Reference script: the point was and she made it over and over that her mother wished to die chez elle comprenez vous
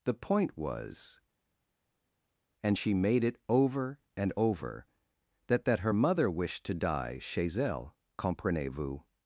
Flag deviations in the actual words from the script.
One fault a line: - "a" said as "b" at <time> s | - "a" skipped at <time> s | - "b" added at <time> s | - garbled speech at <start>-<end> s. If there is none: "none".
- "that" added at 5.6 s